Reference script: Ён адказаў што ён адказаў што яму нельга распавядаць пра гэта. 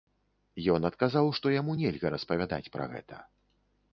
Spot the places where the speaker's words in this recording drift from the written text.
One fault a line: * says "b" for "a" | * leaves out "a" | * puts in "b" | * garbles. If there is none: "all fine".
* leaves out "ён адказаў што"